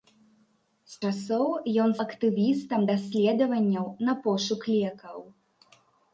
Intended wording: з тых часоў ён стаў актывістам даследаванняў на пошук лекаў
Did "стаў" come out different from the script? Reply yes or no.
yes